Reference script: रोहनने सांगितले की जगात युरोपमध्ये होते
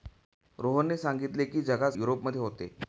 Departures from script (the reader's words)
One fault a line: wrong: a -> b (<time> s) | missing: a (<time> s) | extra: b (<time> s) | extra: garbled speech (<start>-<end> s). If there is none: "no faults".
no faults